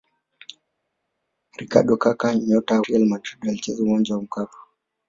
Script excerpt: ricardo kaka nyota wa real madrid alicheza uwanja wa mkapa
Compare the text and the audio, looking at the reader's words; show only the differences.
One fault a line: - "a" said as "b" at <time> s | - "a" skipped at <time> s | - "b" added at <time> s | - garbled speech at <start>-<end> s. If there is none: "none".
- "wa" skipped at 2.8 s